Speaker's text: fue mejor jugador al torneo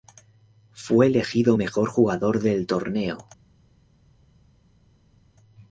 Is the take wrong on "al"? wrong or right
wrong